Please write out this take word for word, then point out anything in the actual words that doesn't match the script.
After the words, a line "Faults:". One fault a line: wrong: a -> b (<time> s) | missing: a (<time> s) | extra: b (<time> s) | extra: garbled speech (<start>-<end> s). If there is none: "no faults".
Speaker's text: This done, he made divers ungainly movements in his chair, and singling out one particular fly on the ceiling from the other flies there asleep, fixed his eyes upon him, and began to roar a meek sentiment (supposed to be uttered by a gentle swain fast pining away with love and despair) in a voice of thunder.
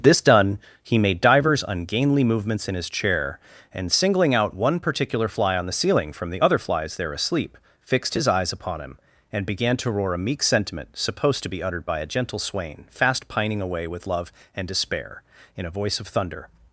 This done, he made divers ungainly movements in his chair, and singling out one particular fly on the ceiling from the other flies there asleep, fixed his eyes upon him, and began to roar a meek sentiment (supposed to be uttered by a gentle swain fast pining away with love and despair) in a voice of thunder.
Faults:
no faults